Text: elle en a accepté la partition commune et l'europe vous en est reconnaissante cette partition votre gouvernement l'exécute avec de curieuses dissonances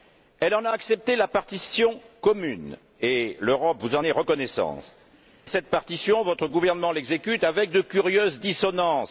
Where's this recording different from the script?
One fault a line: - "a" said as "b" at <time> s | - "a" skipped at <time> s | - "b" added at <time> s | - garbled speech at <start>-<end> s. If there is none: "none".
none